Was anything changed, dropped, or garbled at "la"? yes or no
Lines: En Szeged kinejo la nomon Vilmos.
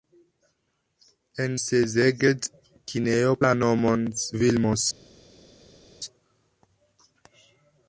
no